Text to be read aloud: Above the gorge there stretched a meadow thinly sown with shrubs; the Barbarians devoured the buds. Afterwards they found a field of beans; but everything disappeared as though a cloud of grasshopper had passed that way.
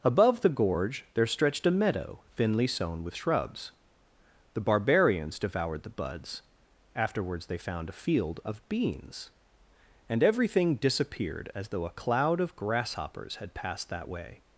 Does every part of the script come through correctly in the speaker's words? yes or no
no